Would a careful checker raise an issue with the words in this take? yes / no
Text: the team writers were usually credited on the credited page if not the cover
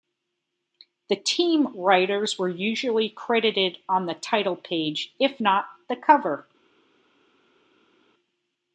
yes